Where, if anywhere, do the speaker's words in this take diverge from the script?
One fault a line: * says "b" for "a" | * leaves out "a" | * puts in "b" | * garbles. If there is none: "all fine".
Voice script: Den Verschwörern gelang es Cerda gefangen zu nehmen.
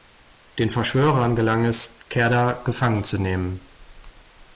all fine